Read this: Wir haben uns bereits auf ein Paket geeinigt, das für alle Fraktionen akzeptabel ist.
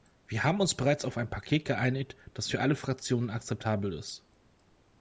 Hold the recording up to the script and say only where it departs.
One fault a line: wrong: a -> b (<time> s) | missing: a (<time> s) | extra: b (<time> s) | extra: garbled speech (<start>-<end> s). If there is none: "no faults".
no faults